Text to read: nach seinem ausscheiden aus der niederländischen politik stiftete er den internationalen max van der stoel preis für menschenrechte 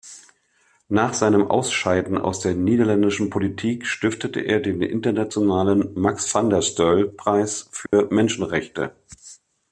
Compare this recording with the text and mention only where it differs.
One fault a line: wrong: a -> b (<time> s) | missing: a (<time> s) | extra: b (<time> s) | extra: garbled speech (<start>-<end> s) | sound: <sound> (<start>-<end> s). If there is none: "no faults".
sound: dropout (7.9-7.9 s)